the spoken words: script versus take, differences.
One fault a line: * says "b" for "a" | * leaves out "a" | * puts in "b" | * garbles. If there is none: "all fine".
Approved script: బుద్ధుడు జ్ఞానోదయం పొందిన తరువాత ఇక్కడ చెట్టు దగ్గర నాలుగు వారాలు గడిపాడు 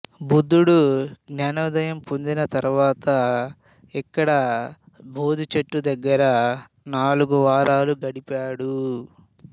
* puts in "బోధి"